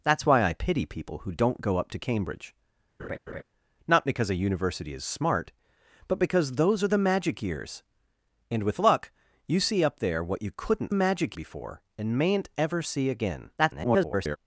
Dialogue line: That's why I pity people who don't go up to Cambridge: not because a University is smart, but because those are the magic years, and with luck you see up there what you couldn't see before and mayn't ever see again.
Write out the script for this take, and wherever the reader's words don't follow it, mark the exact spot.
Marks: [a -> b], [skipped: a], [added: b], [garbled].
That's why I pity people who don't go up to Cambridge: not because a University is smart, but because those are the magic years, and with luck you see up there what you couldn't [see -> magic] before and mayn't ever see again. [garbled]